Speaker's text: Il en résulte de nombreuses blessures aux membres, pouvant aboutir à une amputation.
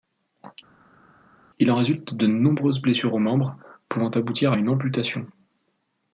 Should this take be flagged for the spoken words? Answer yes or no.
no